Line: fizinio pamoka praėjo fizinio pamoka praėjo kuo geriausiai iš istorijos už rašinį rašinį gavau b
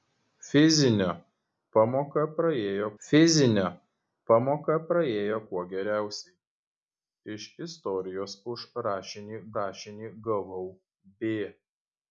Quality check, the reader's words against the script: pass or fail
pass